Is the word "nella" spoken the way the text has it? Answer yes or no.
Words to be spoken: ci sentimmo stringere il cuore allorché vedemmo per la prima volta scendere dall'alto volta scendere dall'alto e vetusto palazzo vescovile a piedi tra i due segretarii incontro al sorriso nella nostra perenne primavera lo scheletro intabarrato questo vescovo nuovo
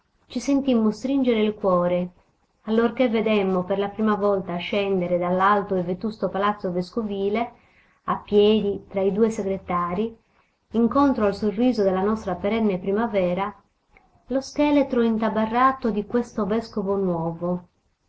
no